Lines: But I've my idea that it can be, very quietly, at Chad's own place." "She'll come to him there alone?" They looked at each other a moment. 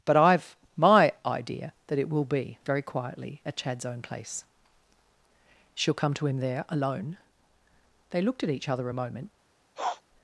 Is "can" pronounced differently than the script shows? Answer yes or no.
yes